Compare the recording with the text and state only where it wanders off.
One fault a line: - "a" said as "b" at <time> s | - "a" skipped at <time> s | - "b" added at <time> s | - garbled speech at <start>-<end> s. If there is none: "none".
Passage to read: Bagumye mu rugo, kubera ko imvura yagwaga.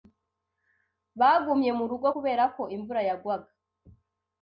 none